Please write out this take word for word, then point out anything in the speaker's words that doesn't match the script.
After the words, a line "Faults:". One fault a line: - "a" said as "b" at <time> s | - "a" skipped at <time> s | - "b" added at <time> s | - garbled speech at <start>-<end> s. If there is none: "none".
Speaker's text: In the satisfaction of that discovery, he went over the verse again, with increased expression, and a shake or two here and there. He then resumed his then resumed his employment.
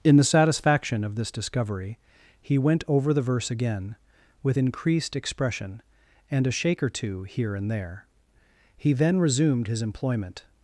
In the satisfaction of this discovery, he went over the verse again, with increased expression, and a shake or two here and there. He then resumed his employment.
Faults:
- "that" said as "this" at 1.1 s
- "then resumed his" skipped at 9.8 s